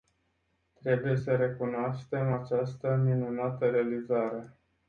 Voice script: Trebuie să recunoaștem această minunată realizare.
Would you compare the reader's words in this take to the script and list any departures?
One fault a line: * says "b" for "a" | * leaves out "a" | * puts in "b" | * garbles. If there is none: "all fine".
all fine